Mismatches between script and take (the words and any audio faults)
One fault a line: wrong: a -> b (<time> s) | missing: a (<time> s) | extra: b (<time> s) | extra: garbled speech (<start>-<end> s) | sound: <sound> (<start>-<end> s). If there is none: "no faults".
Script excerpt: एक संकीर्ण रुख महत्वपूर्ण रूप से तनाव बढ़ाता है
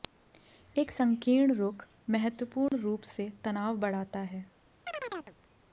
sound: dropout (2.7-2.7 s)
sound: chirp (4.9-5.4 s)